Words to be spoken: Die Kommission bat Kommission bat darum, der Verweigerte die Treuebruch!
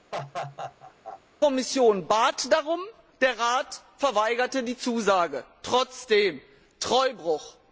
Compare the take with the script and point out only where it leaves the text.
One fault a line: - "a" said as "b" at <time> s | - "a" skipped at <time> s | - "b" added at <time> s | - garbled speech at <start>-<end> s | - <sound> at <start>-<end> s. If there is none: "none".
- laugh at 0.1-1.2 s
- "Kommission bat" skipped at 2.5 s
- "Rat" added at 3.4 s
- "Zusage trotzdem" added at 4.8 s